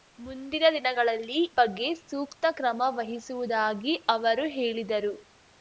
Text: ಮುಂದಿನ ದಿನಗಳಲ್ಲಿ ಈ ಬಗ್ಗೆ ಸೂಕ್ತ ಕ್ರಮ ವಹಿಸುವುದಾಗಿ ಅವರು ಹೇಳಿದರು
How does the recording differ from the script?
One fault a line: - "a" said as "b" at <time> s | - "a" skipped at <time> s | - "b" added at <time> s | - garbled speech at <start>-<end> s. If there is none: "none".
- "ಈ" skipped at 1.4 s